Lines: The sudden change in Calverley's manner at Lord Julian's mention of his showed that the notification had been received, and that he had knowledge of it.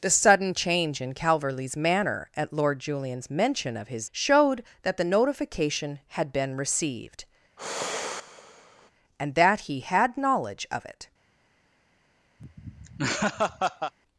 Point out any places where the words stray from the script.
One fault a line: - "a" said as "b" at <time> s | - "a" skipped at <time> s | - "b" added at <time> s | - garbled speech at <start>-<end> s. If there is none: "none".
none